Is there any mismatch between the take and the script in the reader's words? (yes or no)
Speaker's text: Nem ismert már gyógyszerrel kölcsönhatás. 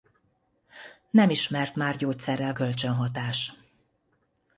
no